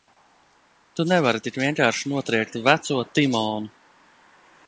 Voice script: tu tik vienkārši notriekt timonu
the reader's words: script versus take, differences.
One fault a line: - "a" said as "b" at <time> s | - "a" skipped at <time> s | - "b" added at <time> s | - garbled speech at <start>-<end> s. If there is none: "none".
- "nevari" added at 1.1 s
- "veco" added at 2.7 s